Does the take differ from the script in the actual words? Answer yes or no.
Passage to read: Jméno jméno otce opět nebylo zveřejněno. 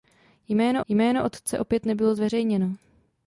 no